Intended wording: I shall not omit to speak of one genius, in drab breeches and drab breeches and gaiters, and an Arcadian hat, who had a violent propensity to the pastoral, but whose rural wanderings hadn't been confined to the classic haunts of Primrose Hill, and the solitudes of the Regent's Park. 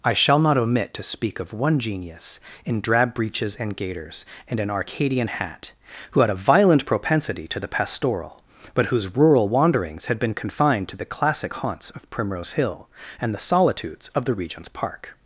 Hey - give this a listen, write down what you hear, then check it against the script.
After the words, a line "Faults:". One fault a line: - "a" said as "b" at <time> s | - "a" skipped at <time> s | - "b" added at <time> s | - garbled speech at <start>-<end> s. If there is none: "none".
I shall not omit to speak of one genius, in drab breeches and gaiters, and an Arcadian hat, who had a violent propensity to the pastoral, but whose rural wanderings had been confined to the classic haunts of Primrose Hill, and the solitudes of the Regent's Park.
Faults:
- "drab breeches and" skipped at 3.8 s
- "hadn't" said as "had" at 10.1 s